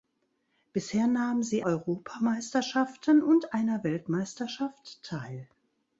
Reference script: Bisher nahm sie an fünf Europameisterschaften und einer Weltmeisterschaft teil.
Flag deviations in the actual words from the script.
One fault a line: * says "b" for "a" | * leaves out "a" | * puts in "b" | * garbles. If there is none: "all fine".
* leaves out "an fünf"